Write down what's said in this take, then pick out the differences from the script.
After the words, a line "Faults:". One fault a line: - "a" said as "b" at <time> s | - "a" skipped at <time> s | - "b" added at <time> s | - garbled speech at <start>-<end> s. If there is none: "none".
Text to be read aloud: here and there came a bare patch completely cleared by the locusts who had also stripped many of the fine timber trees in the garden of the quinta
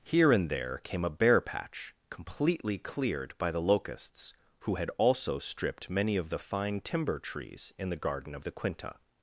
here and there came a bare patch completely cleared by the locusts who had also stripped many of the fine timber trees in the garden of the quinta
Faults:
none